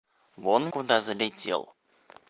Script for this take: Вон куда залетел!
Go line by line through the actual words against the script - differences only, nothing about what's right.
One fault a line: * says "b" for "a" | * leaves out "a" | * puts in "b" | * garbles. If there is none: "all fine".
all fine